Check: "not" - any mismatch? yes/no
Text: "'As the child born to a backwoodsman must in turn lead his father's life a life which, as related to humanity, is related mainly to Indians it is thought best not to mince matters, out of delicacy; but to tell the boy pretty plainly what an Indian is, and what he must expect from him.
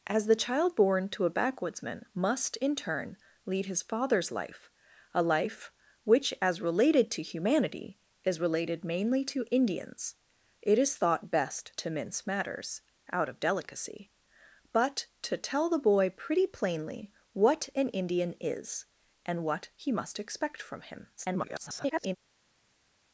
yes